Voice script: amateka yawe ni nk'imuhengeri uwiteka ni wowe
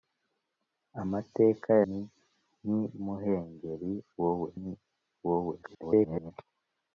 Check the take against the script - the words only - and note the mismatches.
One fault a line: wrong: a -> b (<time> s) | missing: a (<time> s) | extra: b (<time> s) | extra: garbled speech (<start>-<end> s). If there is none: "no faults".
missing: yawe (1.7 s)
wrong: uwiteka -> wowe (4.2 s)
extra: garbled speech (5.6-6.3 s)